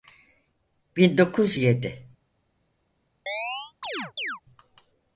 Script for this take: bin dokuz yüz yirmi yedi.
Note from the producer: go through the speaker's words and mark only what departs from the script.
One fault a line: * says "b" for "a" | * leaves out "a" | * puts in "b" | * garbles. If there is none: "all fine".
* leaves out "yüz yirmi"